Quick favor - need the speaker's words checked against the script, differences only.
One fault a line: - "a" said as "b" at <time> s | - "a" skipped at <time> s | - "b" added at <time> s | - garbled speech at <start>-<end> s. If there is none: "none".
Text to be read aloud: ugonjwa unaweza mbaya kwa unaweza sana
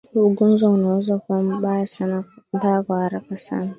- "kuwa" added at 1.2 s
- "unaweza" said as "haraka" at 3.0 s